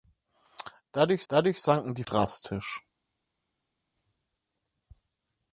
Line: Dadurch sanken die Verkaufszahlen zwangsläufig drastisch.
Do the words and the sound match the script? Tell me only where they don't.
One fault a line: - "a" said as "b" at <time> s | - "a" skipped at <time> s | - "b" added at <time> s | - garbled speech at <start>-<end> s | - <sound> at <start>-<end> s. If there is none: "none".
- "dadurch" added at 1.3 s
- "Verkaufszahlen zwangsläufig" skipped at 2.0 s